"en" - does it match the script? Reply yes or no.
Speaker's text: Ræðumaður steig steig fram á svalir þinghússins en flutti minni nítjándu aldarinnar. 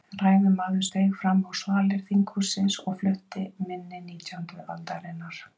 no